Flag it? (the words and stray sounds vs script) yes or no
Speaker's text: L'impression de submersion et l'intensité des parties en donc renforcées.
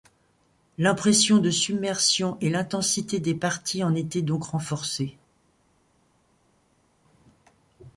yes